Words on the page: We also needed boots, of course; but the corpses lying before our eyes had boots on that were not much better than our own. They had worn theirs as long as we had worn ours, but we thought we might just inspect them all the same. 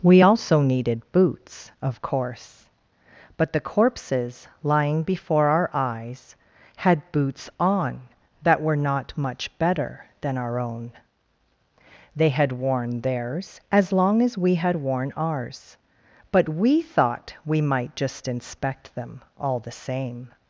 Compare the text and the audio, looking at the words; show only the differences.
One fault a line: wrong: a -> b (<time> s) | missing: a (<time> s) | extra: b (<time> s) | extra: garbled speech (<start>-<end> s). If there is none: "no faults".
no faults